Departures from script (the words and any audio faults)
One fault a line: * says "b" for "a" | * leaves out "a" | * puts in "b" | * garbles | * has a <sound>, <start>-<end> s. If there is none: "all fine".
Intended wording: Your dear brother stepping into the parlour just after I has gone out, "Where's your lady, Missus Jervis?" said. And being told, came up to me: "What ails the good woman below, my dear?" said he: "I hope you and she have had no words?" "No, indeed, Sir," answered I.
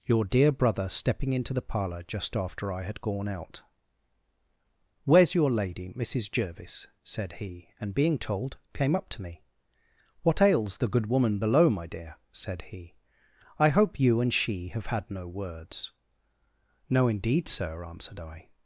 * says "had" for "has"
* puts in "he"